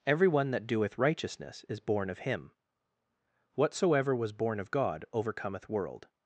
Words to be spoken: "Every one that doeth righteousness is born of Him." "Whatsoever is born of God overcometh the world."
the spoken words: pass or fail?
fail